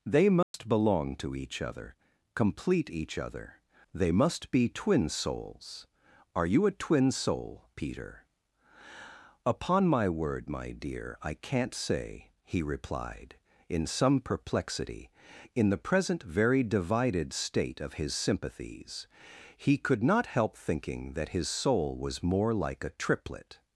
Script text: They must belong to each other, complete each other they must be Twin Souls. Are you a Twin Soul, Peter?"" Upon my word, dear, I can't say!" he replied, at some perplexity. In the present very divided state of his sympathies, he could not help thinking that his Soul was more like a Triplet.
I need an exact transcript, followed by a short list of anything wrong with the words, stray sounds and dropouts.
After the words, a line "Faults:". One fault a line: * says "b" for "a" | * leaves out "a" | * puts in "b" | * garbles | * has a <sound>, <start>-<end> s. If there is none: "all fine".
They must belong to each other, complete each other they must be Twin Souls. Are you a Twin Soul, Peter?"" Upon my word, my dear, I can't say!" he replied, in some perplexity. In the present very divided state of his sympathies, he could not help thinking that his Soul was more like a Triplet.
Faults:
* has a dropout, 0.4-0.5 s
* puts in "my"
* says "in" for "at"